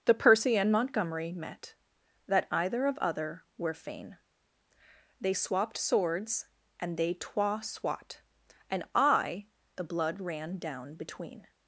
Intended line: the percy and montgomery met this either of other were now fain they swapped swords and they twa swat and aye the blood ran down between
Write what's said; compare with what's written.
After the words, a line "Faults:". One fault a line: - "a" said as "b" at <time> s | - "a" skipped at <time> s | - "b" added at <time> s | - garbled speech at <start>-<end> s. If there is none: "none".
the percy and montgomery met that either of other were fain they swapped swords and they twa swat and aye the blood ran down between
Faults:
- "this" said as "that" at 2.2 s
- "now" skipped at 3.7 s